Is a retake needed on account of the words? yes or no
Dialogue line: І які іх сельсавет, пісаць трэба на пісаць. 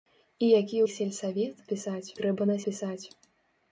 no